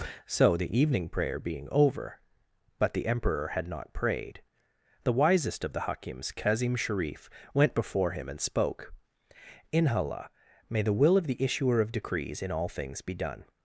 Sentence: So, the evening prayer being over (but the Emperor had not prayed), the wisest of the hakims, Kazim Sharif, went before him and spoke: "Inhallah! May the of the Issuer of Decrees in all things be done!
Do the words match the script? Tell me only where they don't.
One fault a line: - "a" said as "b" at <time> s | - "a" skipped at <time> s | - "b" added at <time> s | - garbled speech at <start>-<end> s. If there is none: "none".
- "will" added at 10.9 s